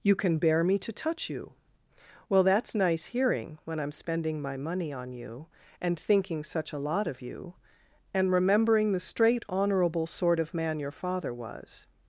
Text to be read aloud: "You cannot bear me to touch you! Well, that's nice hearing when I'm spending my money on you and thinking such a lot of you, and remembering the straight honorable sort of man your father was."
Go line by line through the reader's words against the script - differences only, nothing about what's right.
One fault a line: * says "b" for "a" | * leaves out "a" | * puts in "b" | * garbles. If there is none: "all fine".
* says "can" for "cannot"